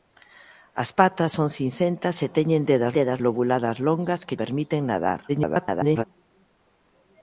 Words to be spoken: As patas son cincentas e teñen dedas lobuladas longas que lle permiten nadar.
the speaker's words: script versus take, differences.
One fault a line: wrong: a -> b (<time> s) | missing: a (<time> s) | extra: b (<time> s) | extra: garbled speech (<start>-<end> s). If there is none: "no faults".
extra: dedas (3.0 s)
missing: lle (4.4 s)
extra: garbled speech (5.3-6.0 s)